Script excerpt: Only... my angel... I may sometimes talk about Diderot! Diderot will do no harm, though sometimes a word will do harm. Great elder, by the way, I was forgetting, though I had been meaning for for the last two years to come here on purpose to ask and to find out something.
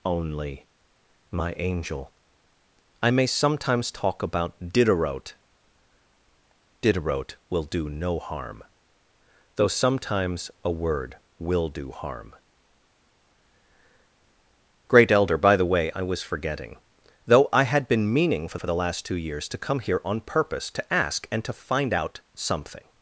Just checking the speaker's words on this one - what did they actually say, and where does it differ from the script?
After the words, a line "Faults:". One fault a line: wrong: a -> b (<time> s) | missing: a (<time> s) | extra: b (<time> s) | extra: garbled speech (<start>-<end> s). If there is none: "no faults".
Only... my angel... I may sometimes talk about Diderot! Diderot will do no harm, though sometimes a word will do harm. Great elder, by the way, I was forgetting, though I had been meaning for for the last two years to come here on purpose to ask and to find out something.
Faults:
no faults